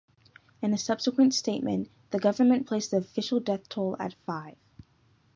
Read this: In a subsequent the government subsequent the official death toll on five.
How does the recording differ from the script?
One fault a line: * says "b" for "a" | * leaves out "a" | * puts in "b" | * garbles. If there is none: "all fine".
* puts in "statement"
* says "placed" for "subsequent"
* says "at" for "on"